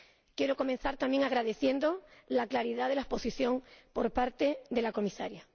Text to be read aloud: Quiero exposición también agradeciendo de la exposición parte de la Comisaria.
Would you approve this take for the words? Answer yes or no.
no